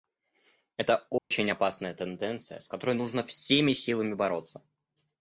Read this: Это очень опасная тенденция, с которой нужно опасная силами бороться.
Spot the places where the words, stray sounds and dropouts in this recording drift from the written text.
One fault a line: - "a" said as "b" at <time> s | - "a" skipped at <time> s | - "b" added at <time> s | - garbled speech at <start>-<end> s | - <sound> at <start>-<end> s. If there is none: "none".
- dropout at 1.2-1.3 s
- "опасная" said as "всеми" at 3.2 s